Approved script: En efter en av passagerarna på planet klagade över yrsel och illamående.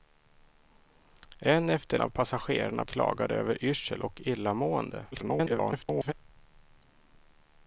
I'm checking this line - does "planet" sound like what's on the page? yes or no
no